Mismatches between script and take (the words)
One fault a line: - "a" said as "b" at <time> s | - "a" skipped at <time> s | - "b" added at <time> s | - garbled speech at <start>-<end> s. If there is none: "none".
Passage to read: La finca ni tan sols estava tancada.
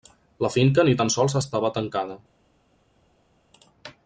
none